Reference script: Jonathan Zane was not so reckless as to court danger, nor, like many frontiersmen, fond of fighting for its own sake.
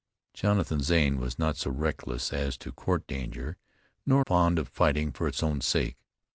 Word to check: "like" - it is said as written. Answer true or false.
false